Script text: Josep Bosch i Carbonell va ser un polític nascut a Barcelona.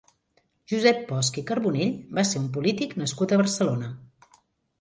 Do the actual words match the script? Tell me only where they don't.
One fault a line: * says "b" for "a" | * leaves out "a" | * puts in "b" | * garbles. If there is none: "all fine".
all fine